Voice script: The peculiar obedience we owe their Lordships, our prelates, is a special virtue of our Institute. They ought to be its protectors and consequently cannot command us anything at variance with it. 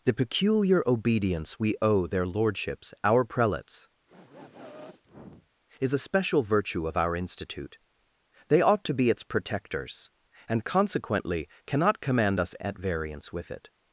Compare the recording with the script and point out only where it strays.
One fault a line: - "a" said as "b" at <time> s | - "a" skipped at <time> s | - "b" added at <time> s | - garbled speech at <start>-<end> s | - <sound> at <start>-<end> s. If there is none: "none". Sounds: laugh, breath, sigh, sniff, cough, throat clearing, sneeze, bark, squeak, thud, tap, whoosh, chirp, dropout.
- sniff at 4.1-5.5 s
- "anything" skipped at 12.5 s